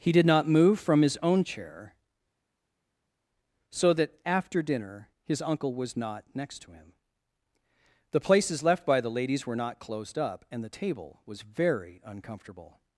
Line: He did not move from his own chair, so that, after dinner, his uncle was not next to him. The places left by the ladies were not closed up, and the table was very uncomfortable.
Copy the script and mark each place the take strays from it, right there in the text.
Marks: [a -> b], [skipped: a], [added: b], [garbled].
He did not move from his own chair, so that, after dinner, his uncle was not next to him. The places left by the ladies were not closed up, and the table was very uncomfortable.